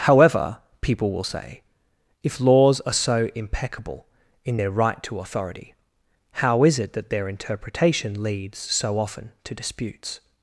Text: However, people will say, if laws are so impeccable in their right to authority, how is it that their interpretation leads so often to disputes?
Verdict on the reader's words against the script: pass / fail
pass